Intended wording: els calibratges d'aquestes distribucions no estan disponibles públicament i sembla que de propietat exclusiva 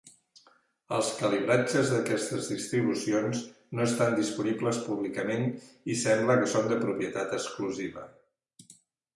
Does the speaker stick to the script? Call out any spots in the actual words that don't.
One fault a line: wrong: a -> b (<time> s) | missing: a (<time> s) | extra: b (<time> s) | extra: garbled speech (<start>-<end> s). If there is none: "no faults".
extra: són (6.5 s)